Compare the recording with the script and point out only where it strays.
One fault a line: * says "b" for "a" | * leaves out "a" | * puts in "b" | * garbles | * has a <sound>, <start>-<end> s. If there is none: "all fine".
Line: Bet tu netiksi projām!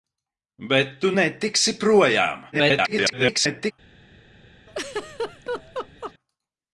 * garbles
* has a laugh, 4.7-6.1 s